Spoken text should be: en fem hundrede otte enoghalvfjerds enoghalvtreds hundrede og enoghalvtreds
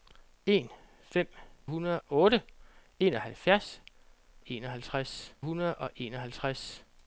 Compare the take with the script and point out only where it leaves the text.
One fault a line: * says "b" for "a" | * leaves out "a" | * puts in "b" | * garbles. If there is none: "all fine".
all fine